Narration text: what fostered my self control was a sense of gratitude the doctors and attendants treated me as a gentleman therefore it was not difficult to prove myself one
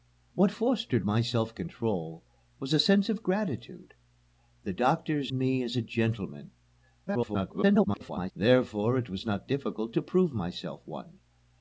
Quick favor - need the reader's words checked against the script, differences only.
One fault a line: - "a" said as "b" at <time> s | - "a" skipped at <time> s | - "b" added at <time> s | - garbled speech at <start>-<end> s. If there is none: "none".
- "and attendants treated" skipped at 5.3 s
- garbled speech at 7.1-8.3 s